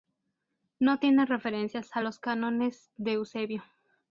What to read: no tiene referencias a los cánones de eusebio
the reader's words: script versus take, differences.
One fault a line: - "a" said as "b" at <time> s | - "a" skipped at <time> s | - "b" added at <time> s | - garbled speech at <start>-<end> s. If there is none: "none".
none